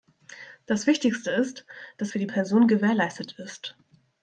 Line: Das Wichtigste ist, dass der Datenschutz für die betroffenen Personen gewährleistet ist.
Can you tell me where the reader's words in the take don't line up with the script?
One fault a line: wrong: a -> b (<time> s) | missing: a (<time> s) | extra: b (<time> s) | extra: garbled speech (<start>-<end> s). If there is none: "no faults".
missing: der Datenschutz (2.1 s)
missing: betroffenen (2.3 s)